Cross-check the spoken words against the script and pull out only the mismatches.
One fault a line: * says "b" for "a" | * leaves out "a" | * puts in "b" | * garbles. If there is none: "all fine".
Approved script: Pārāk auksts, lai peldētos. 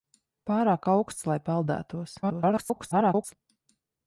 * garbles